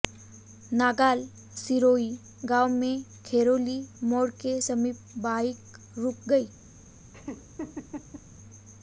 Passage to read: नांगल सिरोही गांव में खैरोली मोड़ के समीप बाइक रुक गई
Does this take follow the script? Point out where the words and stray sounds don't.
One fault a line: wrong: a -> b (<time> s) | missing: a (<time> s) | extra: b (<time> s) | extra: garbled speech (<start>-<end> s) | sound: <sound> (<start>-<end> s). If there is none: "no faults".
sound: laugh (7.1-8.2 s)